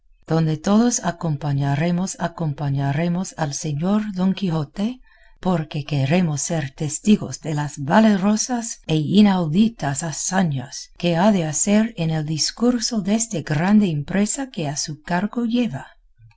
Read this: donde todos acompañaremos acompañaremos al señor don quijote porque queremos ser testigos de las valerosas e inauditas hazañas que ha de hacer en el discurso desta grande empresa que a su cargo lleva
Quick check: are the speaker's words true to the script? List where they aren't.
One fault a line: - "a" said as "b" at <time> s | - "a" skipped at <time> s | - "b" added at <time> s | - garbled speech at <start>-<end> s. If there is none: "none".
none